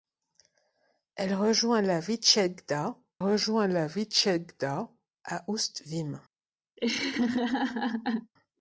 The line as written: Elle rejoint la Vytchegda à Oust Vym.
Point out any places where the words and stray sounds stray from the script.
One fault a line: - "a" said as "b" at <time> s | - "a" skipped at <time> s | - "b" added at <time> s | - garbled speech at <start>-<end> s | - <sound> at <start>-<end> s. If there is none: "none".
- "rejoint la Vytchegda" added at 3.2 s
- laugh at 6.8-8.3 s